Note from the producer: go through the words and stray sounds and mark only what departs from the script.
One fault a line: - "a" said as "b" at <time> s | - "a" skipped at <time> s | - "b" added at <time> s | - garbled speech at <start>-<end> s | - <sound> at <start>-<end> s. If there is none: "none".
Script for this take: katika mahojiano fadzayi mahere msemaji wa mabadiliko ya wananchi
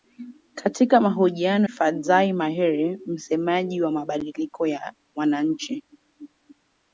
none